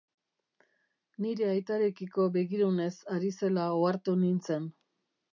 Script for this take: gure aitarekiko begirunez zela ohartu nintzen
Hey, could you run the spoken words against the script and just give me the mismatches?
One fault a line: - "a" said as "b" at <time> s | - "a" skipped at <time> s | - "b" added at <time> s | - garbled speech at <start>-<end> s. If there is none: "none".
- "gure" said as "nire" at 1.2 s
- "ari" added at 3.2 s